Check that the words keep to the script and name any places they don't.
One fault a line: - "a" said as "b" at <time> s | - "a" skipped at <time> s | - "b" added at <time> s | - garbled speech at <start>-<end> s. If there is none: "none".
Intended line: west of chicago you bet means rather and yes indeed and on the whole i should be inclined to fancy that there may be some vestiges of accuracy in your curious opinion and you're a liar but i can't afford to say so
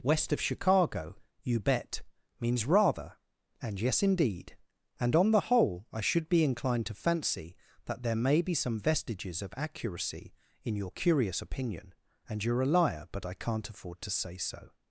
none